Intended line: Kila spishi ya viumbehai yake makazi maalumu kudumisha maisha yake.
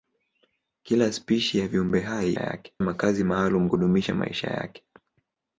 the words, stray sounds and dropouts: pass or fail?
pass